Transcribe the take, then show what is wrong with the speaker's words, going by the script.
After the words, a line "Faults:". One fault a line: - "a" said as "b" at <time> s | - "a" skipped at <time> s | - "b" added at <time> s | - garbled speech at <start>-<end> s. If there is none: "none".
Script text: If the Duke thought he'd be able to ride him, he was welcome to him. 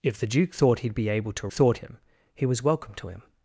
If the Duke thought he'd be able to thought him, he was welcome to him.
Faults:
- "ride" said as "thought" at 1.5 s